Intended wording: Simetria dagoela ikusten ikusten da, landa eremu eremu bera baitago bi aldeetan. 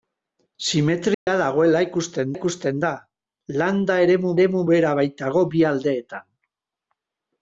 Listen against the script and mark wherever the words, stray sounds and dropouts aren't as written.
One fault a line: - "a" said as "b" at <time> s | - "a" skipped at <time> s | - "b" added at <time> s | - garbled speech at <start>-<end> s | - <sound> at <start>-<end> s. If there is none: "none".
- dropout at 1.1-1.3 s